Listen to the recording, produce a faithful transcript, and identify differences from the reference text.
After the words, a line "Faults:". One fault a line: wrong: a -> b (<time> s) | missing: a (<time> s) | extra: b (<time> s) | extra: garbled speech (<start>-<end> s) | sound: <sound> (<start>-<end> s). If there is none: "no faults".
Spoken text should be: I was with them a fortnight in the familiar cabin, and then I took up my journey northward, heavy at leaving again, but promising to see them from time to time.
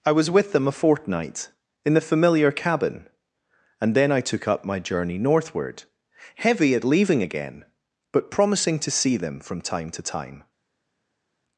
I was with them a fortnight in the familiar cabin, and then I took up my journey northward, heavy at leaving again, but promising to see them from time to time.
Faults:
no faults